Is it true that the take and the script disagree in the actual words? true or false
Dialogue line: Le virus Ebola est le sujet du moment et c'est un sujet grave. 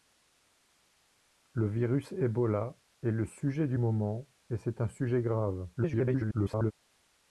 true